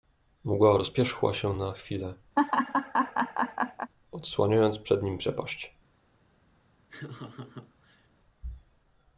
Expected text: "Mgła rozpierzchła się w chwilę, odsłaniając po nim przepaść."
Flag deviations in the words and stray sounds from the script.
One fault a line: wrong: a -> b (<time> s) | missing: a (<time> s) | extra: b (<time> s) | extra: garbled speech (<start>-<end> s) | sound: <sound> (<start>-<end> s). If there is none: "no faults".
wrong: w -> na (1.5 s)
sound: laugh (2.4-3.9 s)
wrong: po -> przed (4.8 s)
sound: laugh (6.9-8.1 s)